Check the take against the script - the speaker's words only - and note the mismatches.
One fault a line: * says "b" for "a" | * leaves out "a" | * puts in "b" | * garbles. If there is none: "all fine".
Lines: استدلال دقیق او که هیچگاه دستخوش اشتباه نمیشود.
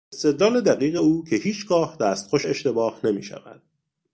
all fine